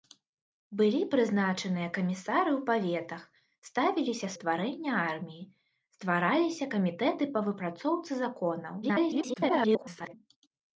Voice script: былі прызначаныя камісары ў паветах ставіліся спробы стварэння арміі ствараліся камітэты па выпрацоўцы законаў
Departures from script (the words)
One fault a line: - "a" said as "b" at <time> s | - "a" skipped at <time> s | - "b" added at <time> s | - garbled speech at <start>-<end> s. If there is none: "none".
- "спробы" skipped at 4.3 s
- garbled speech at 8.8-10.1 s